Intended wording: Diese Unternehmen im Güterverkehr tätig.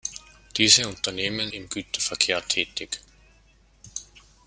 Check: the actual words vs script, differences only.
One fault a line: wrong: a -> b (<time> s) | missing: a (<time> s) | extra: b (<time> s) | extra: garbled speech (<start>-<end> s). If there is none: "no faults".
no faults